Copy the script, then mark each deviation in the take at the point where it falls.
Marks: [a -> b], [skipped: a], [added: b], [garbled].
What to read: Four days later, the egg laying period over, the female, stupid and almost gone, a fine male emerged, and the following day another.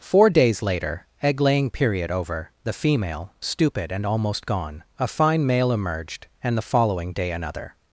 Four days later, [skipped: the] egg laying period over, the female, stupid and almost gone, a fine male emerged, and the following day another.